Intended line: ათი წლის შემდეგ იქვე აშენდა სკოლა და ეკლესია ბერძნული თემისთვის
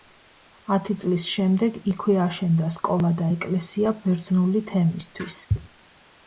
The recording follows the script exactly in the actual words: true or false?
true